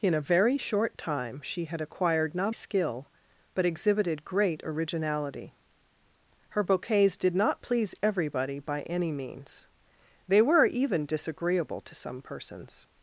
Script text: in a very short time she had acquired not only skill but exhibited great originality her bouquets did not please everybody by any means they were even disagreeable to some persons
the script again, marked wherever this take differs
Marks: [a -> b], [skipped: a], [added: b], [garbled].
in a very short time she had acquired not [skipped: only] skill but exhibited great originality her bouquets did not please everybody by any means they were even disagreeable to some persons